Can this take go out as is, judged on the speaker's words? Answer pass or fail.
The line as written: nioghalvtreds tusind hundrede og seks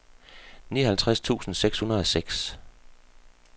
fail